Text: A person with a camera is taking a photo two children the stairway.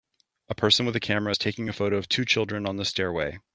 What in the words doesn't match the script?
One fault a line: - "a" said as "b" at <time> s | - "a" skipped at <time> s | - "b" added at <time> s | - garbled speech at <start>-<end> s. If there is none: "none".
- "of" added at 2.0 s
- "on" added at 2.7 s